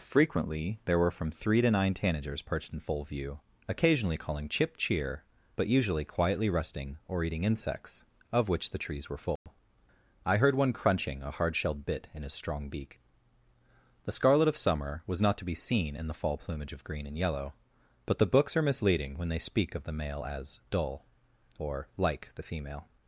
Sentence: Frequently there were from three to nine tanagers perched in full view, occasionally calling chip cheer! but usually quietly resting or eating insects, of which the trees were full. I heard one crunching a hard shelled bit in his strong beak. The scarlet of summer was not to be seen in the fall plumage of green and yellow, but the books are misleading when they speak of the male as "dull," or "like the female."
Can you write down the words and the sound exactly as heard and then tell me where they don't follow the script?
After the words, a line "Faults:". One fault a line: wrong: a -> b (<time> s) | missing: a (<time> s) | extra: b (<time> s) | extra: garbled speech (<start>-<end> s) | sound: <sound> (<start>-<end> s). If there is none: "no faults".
Frequently there were from three to nine tanagers perched in full view, occasionally calling chip cheer! but usually quietly resting or eating insects, of which the trees were full. I heard one crunching a hard shelled bit in his strong beak. The scarlet of summer was not to be seen in the fall plumage of green and yellow, but the books are misleading when they speak of the male as "dull," or "like the female."
Faults:
sound: dropout (9.4-9.5 s)